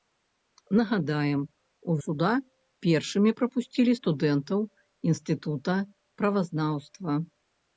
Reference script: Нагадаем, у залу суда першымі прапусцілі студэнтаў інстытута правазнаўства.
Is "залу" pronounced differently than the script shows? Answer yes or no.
yes